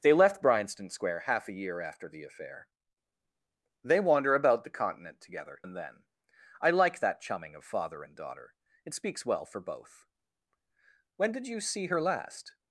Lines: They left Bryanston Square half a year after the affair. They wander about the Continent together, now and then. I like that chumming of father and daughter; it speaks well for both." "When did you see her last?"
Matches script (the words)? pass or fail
fail